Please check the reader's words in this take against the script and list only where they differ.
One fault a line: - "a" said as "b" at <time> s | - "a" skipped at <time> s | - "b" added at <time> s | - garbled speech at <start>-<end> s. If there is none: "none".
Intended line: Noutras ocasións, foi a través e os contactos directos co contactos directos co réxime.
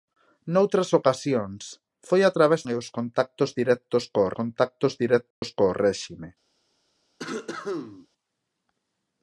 none